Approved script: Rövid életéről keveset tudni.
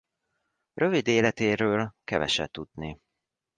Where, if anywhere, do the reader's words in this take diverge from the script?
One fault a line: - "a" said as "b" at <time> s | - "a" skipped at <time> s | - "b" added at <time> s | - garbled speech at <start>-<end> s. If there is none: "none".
none